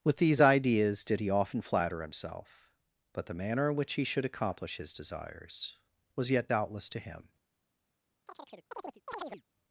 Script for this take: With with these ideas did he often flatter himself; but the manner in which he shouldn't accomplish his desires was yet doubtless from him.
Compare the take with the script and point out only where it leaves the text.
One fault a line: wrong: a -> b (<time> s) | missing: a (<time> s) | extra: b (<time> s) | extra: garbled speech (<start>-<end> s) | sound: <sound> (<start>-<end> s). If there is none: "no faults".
missing: with (0.2 s)
wrong: shouldn't -> should (4.0 s)
wrong: from -> to (6.9 s)
sound: chirp (8.3-9.4 s)